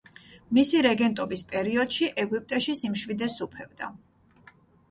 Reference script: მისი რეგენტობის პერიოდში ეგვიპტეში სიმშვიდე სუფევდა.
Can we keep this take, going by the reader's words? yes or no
yes